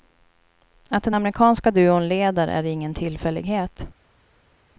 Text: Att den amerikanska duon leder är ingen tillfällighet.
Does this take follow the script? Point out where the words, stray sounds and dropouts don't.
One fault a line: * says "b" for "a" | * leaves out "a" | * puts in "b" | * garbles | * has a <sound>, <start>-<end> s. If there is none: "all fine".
all fine